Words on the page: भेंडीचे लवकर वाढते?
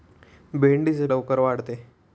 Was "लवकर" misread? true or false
false